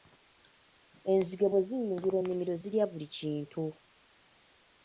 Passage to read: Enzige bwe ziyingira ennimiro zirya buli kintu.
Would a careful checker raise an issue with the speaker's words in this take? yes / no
no